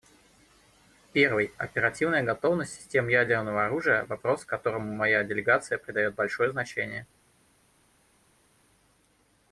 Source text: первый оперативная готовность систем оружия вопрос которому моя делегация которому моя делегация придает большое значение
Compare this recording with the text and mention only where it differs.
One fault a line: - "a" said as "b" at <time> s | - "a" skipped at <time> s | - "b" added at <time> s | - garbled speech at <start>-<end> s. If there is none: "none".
- "ядерного" added at 3.1 s
- "которому моя делегация" skipped at 5.8 s